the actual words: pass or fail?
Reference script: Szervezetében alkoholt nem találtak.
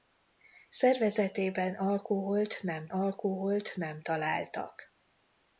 fail